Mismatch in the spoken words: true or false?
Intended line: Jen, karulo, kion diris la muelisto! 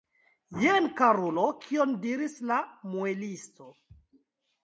false